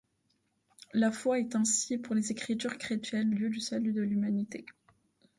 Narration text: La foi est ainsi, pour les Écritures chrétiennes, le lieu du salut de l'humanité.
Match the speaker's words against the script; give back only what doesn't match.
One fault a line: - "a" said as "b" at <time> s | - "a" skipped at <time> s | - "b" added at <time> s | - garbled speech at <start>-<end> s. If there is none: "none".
- "le" skipped at 3.3 s